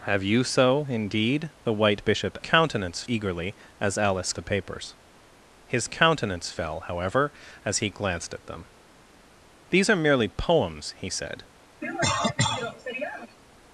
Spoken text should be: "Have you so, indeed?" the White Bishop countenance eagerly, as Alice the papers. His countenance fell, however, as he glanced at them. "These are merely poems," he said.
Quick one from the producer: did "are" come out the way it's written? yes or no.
yes